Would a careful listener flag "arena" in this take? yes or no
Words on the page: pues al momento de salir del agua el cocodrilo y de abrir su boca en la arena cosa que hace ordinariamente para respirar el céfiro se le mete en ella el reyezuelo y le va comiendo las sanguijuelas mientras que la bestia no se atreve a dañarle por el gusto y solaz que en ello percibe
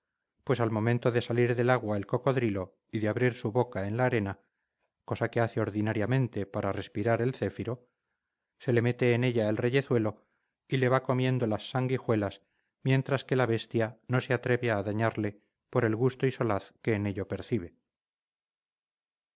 no